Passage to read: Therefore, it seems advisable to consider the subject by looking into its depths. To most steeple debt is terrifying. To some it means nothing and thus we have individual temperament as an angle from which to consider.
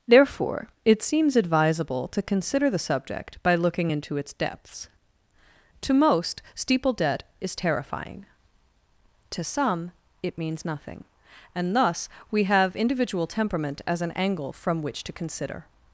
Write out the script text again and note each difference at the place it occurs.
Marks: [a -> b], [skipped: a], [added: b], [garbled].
Therefore, it seems advisable to consider the subject by looking into its depths. To most steeple debt is terrifying. To some it means nothing and thus we have individual temperament as an angle from which to consider.